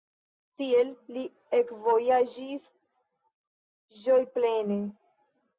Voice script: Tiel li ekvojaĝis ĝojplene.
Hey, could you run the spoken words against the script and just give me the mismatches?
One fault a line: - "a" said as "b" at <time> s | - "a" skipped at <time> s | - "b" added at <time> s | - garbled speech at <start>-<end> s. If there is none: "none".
none